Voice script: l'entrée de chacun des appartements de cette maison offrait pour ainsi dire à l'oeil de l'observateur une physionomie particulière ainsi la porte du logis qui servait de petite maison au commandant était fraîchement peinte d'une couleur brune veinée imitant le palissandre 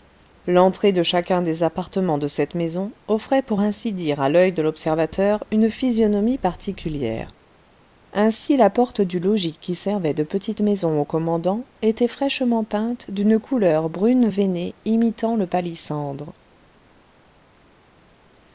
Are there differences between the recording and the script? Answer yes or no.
no